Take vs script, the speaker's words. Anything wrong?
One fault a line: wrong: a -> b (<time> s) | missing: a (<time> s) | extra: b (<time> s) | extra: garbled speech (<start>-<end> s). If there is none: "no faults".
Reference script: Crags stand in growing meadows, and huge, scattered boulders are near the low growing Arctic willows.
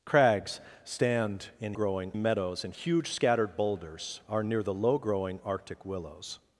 no faults